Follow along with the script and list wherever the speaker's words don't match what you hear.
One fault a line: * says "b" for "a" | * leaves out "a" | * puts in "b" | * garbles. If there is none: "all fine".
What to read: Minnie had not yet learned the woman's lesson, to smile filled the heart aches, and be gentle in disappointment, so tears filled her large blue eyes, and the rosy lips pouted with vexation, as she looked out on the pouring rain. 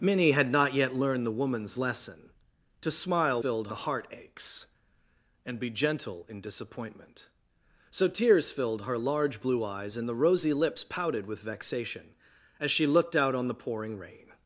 all fine